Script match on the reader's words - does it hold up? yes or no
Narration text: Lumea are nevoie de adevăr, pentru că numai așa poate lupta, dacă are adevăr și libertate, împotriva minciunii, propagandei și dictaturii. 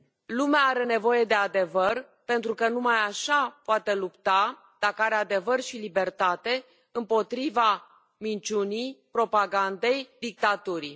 no